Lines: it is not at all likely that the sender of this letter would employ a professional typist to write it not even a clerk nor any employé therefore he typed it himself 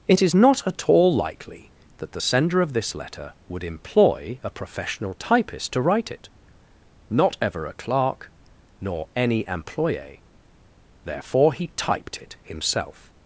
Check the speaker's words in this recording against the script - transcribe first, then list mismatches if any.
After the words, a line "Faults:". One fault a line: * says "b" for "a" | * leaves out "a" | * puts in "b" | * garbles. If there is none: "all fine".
it is not at all likely that the sender of this letter would employ a professional typist to write it not ever a clerk nor any employé therefore he typed it himself
Faults:
* says "ever" for "even"